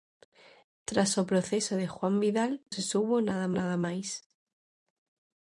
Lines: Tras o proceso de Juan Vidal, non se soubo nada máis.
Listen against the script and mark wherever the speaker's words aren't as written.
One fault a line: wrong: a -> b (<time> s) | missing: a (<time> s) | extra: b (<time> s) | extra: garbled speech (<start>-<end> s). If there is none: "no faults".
missing: non (2.5 s)
extra: nada (3.6 s)